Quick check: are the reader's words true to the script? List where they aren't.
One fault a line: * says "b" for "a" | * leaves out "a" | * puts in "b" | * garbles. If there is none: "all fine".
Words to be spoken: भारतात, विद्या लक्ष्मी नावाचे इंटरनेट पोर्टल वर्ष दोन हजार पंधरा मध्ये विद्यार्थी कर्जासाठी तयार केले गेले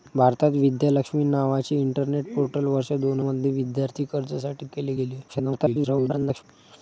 * leaves out "हजार पंधरा"
* leaves out "तयार"
* garbles